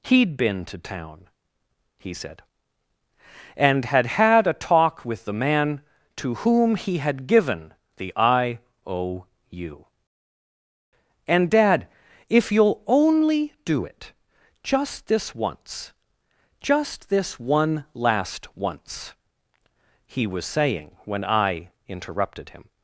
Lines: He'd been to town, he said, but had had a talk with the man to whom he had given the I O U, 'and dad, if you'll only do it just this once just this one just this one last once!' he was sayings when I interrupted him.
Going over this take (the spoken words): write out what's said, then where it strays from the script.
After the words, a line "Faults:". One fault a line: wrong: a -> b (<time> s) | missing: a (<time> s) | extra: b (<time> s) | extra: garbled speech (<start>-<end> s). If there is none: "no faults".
He'd been to town, he said, and had had a talk with the man to whom he had given the I O U, 'and dad, if you'll only do it just this once just this one last once!' he was saying when I interrupted him.
Faults:
wrong: but -> and (3.5 s)
missing: just this one (17.9 s)
wrong: sayings -> saying (20.5 s)